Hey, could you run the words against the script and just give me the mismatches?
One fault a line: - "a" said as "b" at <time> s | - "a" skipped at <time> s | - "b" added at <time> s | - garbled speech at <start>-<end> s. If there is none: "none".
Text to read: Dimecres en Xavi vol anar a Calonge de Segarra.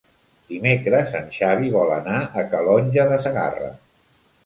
none